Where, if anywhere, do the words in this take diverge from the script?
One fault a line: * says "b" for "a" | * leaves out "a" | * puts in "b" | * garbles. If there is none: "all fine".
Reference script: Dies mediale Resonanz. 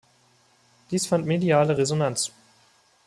* puts in "fand"